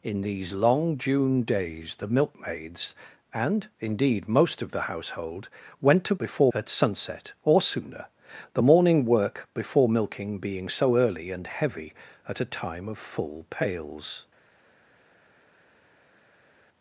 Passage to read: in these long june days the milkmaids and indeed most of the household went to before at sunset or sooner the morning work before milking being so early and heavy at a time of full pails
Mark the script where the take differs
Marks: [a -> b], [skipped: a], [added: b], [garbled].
in these long june days the milkmaids and indeed most of the household went to before at sunset or sooner the morning work before milking being so early and heavy at a time of full pails